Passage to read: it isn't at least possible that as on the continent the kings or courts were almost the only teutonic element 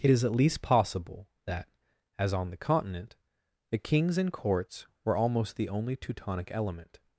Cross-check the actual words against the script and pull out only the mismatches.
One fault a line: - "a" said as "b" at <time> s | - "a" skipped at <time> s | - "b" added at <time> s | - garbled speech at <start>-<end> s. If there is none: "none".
- "isn't" said as "is" at 0.1 s
- "or" said as "and" at 4.2 s